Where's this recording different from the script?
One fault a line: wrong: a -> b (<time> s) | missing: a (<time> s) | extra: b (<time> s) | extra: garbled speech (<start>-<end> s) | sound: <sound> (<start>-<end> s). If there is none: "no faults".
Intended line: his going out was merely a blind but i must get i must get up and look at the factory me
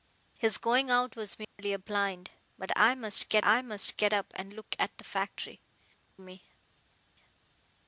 sound: dropout (1.4-1.6 s)